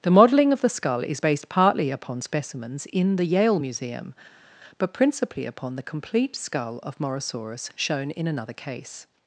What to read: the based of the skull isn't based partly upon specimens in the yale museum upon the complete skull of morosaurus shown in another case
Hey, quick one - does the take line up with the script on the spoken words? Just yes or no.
no